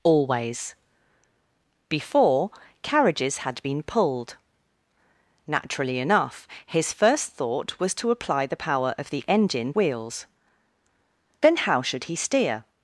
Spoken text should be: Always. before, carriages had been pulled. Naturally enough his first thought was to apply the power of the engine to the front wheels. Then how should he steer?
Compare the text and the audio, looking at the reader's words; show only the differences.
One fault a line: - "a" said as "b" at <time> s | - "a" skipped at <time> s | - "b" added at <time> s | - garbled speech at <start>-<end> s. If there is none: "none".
- "to the front" skipped at 9.7 s